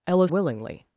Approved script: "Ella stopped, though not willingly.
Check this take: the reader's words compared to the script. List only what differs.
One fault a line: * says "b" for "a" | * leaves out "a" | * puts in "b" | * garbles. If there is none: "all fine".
* leaves out "stopped though not"